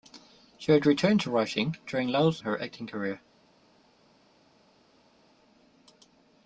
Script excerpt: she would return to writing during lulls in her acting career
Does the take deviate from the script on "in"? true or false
true